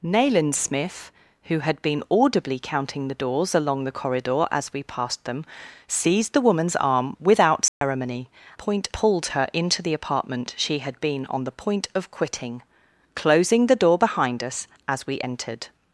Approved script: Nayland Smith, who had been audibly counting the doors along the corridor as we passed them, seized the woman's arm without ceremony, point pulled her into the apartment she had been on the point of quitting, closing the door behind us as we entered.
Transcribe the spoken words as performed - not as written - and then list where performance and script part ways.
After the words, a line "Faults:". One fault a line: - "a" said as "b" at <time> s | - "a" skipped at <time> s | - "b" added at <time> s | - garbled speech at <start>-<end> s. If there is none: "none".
Nayland Smith, who had been audibly counting the doors along the corridor as we passed them, seized the woman's arm without ceremony, point pulled her into the apartment she had been on the point of quitting, closing the door behind us as we entered.
Faults:
none